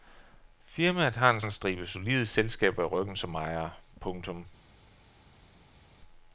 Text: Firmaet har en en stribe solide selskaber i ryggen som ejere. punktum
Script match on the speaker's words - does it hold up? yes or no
yes